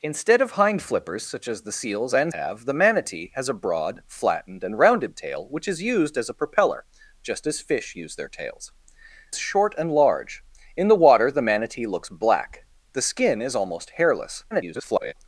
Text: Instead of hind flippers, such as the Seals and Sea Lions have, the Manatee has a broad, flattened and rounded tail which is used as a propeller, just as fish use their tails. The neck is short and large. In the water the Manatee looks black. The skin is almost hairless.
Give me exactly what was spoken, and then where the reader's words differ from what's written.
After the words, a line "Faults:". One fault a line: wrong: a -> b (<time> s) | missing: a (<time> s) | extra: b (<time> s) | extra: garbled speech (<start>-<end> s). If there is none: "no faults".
Instead of hind flippers, such as the Seals and Have, the Manatee has a broad, flattened and rounded tail which is used as a propeller, just as fish use their tails. Short and large. In the water the Manatee looks black. The skin is almost hairless. [garbled]
Faults:
missing: Sea Lions (2.3 s)
missing: The neck is (8.7 s)
extra: garbled speech (14.5-15.1 s)